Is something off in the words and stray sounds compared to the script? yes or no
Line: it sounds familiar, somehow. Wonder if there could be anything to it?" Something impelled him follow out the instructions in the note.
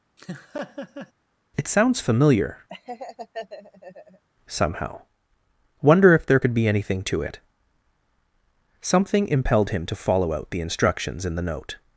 yes